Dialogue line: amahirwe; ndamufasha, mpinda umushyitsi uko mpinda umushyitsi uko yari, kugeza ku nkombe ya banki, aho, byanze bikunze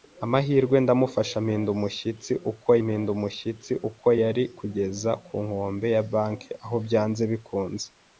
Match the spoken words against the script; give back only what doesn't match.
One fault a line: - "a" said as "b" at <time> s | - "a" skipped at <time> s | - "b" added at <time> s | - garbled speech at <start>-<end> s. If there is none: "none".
none